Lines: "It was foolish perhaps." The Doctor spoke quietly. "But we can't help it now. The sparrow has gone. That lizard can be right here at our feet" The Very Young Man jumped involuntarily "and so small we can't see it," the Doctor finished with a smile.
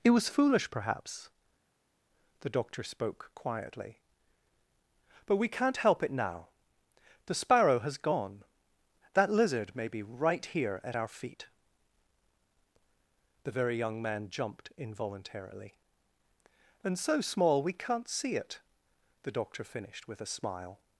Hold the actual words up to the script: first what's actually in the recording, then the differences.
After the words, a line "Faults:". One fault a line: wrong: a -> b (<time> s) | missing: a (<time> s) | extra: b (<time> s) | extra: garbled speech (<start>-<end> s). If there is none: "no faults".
"It was foolish perhaps." The Doctor spoke quietly. "But we can't help it now. The sparrow has gone. That lizard may be right here at our feet" The Very Young Man jumped involuntarily "and so small we can't see it," the Doctor finished with a smile.
Faults:
wrong: can -> may (9.8 s)